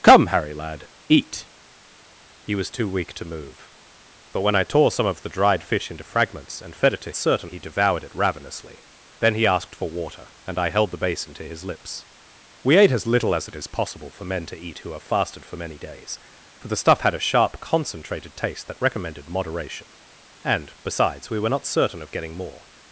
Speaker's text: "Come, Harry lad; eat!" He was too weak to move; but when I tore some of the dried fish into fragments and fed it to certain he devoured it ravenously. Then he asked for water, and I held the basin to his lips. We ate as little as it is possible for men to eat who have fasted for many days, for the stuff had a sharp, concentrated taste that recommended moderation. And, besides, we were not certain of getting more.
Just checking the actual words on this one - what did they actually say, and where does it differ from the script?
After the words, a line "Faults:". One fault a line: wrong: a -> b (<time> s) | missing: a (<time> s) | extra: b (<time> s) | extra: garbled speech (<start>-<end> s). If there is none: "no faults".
"Come, Harry lad; eat!" He was too weak to move; but when I tore some of the dried fish into fragments and fed it to certain he devoured it ravenously. Then he asked for water, and I held the basin to his lips. We ate as little as it is possible for men to eat who have fasted for many days, for the stuff had a sharp, concentrated taste that recommended moderation. And, besides, we were not certain of getting more.
Faults:
no faults